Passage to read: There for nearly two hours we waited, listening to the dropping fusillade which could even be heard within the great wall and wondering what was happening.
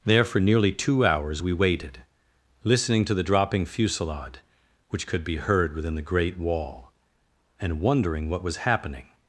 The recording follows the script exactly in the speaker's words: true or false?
false